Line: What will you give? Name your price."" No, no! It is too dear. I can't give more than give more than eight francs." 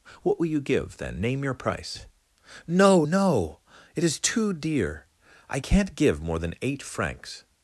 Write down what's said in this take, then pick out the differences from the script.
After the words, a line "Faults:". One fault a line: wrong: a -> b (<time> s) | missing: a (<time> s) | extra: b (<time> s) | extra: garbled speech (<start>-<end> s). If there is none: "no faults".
What will you give, then? Name your price."" No, no! It is too dear. I can't give more than eight francs."
Faults:
extra: then (1.0 s)
missing: give more than (6.5 s)